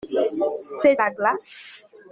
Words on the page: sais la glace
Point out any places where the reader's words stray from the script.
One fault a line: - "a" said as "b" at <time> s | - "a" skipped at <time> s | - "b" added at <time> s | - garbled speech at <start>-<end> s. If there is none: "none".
none